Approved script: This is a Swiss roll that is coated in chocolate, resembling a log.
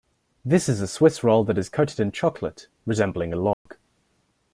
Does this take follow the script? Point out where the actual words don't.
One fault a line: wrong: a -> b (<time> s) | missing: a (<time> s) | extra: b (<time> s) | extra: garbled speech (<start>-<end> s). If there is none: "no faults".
no faults